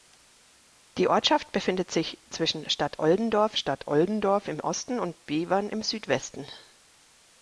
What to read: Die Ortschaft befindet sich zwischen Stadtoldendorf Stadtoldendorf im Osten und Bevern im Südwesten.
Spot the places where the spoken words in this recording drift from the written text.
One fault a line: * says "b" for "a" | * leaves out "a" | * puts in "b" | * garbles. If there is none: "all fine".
all fine